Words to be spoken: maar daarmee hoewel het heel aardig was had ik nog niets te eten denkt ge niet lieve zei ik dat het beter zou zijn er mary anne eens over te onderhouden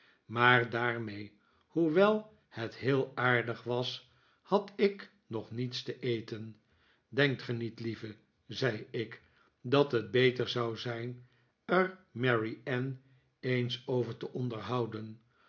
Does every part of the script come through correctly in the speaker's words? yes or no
yes